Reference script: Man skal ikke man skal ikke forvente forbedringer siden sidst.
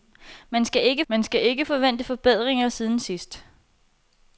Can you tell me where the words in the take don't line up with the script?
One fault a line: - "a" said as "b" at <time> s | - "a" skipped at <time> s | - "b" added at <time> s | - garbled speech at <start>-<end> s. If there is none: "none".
none